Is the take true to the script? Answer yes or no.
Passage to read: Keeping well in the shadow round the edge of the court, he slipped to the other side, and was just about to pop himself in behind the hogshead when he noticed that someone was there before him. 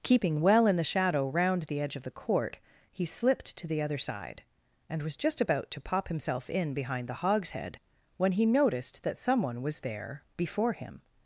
yes